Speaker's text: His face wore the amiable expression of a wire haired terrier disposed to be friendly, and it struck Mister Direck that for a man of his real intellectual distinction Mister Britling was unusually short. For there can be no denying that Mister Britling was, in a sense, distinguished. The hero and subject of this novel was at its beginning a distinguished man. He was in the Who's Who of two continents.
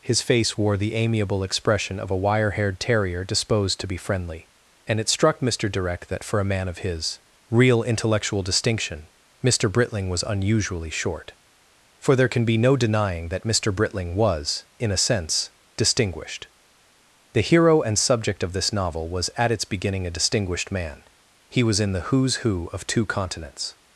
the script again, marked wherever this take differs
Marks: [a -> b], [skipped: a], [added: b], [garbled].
His face wore the amiable expression of a wire haired terrier disposed to be friendly, and it struck Mister Direck that for a man of his real intellectual distinction Mister Britling was unusually short. For there can be no denying that Mister Britling was, in a sense, distinguished. The hero and subject of this novel was at its beginning a distinguished man. He was in the Who's Who of two continents.